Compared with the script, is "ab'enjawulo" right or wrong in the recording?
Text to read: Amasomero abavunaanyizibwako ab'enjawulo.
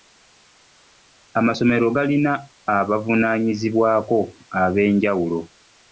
right